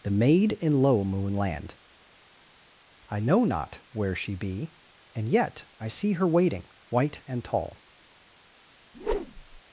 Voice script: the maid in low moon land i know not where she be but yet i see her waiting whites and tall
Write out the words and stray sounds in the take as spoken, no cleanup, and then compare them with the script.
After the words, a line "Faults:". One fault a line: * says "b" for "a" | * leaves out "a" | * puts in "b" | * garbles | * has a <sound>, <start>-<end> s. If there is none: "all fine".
the maid in low moon land i know not where she be and yet i see her waiting white and tall
Faults:
* says "and" for "but"
* says "white" for "whites"
* has a whoosh, 8.9-9.6 s